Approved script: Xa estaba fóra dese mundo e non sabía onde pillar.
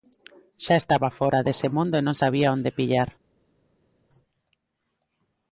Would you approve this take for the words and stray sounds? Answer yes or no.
yes